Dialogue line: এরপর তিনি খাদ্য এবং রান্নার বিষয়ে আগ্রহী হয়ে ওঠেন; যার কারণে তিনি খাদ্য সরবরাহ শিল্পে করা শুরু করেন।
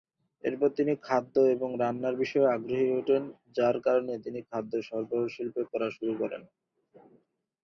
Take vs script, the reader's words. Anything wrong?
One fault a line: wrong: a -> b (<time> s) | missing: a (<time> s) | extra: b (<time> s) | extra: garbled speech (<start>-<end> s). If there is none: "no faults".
no faults